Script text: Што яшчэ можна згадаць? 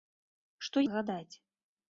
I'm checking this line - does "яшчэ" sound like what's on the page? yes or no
no